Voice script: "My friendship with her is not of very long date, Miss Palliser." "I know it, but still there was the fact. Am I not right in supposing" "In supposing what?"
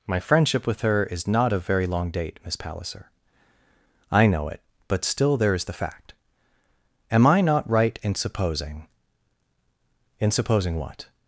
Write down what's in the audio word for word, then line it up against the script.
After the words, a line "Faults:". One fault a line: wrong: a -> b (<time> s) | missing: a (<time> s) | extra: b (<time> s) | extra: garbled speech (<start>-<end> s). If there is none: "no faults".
"My friendship with her is not of very long date, Miss Palliser." "I know it, but still there is the fact. Am I not right in supposing" "In supposing what?"
Faults:
wrong: was -> is (5.5 s)